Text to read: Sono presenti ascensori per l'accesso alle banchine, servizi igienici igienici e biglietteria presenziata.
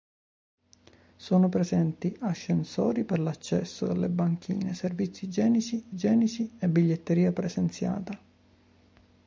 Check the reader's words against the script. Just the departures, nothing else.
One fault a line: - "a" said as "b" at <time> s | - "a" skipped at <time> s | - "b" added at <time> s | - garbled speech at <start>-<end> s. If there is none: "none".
none